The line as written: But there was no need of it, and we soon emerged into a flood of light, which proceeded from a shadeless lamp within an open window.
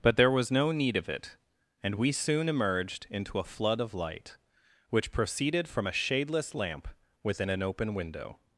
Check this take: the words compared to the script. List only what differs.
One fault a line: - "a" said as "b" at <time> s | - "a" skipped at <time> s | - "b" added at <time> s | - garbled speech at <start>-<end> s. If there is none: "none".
none